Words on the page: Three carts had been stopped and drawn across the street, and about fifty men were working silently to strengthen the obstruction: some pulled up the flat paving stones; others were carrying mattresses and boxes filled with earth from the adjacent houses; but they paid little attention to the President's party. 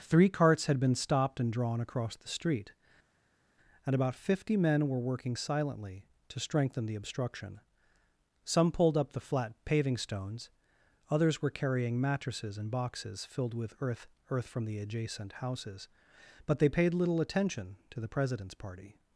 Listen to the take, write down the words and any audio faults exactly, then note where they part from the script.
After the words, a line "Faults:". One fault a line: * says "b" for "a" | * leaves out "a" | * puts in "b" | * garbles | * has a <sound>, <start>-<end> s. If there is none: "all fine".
Three carts had been stopped and drawn across the street, and about fifty men were working silently to strengthen the obstruction: some pulled up the flat paving stones; others were carrying mattresses and boxes filled with earth earth from the adjacent houses; but they paid little attention to the President's party.
Faults:
* puts in "earth"